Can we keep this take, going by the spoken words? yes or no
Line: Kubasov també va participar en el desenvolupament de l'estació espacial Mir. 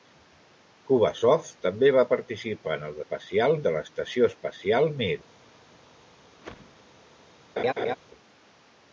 no